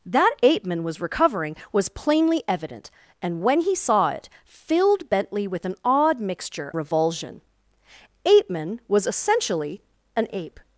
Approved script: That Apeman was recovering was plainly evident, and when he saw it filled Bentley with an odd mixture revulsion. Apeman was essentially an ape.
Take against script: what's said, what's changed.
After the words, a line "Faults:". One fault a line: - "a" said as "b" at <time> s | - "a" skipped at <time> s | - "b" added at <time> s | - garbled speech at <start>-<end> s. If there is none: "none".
That Apeman was recovering was plainly evident, and when he saw it filled Bentley with an odd mixture revulsion. Apeman was essentially an ape.
Faults:
none